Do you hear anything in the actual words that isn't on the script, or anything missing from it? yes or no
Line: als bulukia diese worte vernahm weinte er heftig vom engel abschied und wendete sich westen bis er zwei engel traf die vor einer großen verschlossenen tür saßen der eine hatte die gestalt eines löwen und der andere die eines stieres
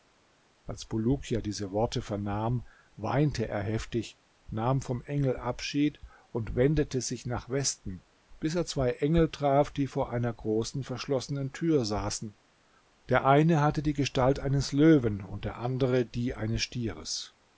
yes